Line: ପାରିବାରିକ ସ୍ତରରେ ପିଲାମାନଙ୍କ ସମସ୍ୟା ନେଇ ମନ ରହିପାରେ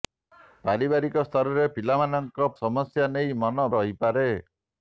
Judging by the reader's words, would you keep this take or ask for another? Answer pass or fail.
pass